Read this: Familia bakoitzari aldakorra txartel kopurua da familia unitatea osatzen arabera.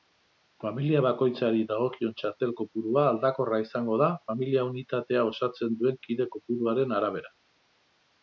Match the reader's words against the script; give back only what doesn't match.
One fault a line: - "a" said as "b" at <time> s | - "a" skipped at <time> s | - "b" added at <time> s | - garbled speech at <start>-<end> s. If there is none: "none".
- "aldakorra" said as "dagokion" at 1.7 s
- "aldakorra izango" added at 3.1 s
- "duen kide kopuruaren" added at 5.8 s